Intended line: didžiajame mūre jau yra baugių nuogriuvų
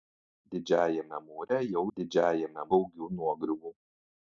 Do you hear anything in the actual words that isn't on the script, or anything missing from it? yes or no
yes